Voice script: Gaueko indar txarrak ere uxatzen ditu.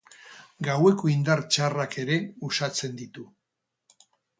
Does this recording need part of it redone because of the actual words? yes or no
no